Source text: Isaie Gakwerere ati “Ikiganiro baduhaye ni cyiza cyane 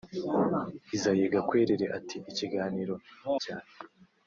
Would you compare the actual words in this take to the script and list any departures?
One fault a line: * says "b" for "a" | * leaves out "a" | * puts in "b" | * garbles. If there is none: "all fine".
* leaves out "baduhaye ni cyiza"